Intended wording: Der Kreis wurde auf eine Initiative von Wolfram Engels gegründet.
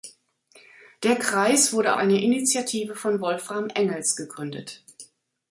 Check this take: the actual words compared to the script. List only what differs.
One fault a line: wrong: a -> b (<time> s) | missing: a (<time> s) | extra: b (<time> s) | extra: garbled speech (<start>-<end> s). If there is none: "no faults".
missing: auf (1.9 s)